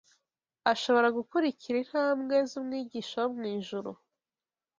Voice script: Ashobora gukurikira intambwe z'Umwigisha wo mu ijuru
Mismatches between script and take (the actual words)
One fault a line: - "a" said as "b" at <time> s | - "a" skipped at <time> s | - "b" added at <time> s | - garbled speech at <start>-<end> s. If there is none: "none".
none